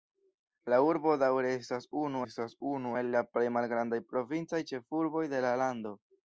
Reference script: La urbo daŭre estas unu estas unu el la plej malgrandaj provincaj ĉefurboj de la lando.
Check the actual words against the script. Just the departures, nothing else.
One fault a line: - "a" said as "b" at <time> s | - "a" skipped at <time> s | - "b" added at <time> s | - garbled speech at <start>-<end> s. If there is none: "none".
none